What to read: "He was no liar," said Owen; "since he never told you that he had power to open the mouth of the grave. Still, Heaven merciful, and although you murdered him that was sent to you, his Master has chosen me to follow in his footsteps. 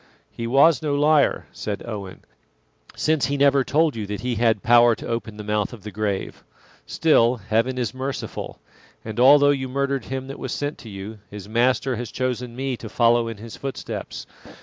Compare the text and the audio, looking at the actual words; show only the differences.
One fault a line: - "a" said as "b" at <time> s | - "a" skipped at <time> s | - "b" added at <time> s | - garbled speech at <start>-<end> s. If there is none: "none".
- "is" added at 7.8 s